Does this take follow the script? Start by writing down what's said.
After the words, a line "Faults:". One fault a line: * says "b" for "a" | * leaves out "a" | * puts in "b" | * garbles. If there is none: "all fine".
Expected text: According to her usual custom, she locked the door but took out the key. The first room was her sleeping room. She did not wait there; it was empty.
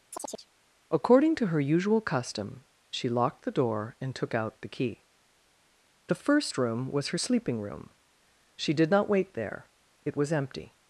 According to her usual custom, she locked the door and took out the key. The first room was her sleeping room. She did not wait there; it was empty.
Faults:
* says "and" for "but"